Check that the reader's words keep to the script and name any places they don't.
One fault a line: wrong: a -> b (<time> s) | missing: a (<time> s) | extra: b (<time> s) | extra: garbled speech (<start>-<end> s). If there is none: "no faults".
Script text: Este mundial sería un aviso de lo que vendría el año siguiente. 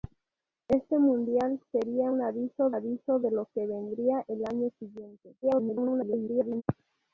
extra: aviso (2.7 s)
extra: garbled speech (5.4-6.6 s)